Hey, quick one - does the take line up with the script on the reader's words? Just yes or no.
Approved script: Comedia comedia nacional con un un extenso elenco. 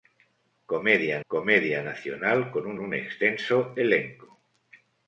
yes